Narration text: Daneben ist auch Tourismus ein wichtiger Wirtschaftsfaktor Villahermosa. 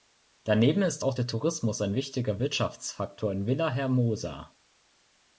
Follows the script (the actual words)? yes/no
no